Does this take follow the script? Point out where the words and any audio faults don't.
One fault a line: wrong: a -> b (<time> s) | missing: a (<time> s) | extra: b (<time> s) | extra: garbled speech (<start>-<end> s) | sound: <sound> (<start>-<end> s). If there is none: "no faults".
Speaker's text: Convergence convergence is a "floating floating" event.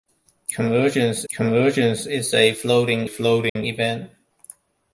sound: dropout (3.5-3.6 s)